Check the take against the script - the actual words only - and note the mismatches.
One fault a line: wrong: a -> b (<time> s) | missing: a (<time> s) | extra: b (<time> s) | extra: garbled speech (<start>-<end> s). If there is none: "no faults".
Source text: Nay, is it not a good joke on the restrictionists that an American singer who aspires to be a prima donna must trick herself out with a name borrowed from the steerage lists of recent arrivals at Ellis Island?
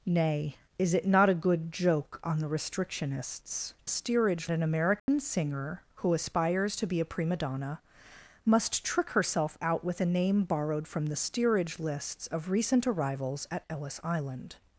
wrong: that -> steerage (3.9 s)